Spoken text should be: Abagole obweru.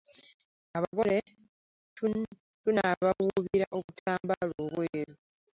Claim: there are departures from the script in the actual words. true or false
true